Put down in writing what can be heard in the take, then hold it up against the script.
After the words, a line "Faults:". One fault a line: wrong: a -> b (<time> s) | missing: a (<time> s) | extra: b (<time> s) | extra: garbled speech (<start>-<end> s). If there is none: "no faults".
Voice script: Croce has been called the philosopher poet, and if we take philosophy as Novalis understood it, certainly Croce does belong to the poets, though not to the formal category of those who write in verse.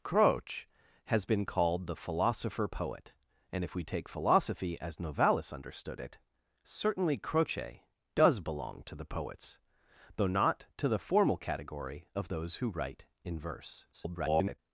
Croce has been called the philosopher poet, and if we take philosophy as Novalis understood it, certainly Croce does belong to the poets, though not to the formal category of those who write in verse. [garbled]
Faults:
extra: garbled speech (13.9-14.6 s)